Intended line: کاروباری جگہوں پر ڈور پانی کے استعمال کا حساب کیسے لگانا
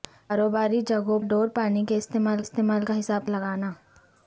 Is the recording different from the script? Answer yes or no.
yes